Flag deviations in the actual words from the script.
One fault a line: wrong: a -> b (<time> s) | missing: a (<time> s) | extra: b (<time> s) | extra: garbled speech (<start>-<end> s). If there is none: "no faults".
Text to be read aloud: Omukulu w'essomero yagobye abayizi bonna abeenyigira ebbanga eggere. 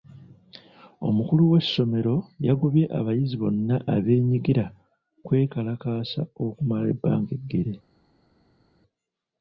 extra: kwekalakaasa okumala (5.3 s)